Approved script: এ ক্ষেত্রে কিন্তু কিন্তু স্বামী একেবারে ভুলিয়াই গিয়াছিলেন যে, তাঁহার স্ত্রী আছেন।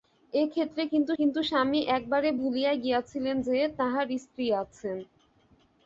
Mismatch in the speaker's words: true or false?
false